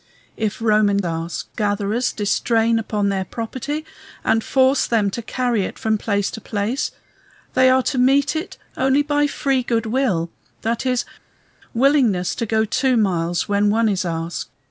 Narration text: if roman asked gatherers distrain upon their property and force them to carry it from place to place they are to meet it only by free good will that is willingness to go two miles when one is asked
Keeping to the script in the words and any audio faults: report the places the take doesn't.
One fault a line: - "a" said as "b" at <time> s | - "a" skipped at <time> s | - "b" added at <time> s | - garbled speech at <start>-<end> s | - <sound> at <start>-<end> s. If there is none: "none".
none